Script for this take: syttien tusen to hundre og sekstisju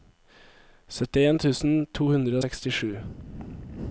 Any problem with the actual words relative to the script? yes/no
no